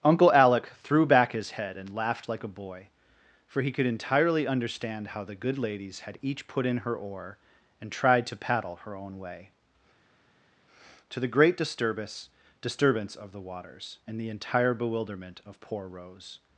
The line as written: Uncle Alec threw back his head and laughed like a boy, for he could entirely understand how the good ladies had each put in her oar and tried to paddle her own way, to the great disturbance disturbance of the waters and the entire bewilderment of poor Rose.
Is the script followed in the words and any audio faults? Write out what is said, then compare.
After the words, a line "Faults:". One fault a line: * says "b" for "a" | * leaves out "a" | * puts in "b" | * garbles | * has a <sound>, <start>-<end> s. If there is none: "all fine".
Uncle Alec threw back his head and laughed like a boy, for he could entirely understand how the good ladies had each put in her oar and tried to paddle her own way, to the great disturbance disturbance of the waters and the entire bewilderment of poor Rose.
Faults:
all fine